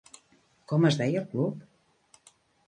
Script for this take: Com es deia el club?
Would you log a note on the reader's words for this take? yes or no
no